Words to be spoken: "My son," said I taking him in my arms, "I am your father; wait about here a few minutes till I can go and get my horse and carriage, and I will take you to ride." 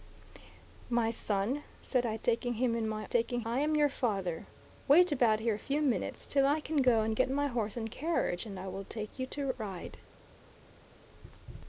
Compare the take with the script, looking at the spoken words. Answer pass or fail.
fail